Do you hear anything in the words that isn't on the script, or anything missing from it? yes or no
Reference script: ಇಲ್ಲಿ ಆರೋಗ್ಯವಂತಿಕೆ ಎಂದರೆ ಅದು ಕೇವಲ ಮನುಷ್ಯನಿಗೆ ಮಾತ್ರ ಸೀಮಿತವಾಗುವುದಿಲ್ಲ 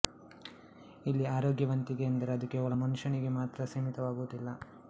no